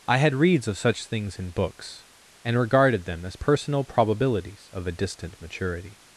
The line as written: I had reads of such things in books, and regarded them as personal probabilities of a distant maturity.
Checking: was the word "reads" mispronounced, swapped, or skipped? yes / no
no